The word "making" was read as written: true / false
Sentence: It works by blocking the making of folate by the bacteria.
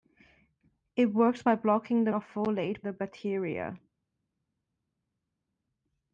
false